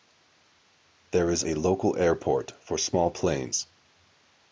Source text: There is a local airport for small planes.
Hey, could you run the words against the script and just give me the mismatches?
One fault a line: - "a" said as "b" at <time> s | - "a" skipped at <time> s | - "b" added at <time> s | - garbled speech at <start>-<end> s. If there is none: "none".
none